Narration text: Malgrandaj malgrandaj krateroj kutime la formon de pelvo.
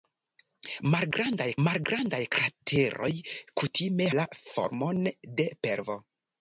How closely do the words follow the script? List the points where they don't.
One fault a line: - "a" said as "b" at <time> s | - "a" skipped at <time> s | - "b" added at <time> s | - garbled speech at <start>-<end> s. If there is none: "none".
none